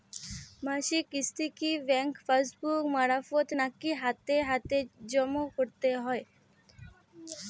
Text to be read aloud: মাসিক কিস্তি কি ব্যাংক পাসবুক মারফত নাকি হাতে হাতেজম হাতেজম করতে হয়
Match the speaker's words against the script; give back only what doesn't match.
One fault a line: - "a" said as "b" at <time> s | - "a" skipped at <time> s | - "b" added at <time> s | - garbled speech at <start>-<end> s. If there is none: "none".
- "হাতেজম" skipped at 5.3 s